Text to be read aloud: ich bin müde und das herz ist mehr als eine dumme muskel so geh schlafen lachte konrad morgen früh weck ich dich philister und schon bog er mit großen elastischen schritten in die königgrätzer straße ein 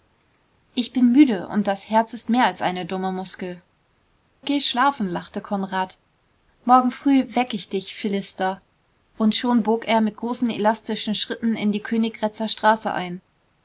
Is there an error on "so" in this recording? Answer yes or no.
yes